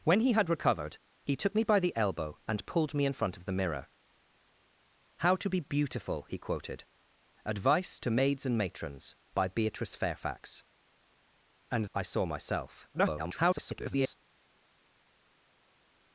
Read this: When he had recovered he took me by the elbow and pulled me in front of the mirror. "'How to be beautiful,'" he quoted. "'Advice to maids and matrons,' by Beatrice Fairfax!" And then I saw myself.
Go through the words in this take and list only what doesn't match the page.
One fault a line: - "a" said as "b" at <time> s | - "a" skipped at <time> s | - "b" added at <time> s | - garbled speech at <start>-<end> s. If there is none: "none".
- "then" skipped at 11.8 s
- garbled speech at 12.9-14.1 s